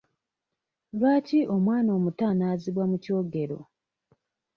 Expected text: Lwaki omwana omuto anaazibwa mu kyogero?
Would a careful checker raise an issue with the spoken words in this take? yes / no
no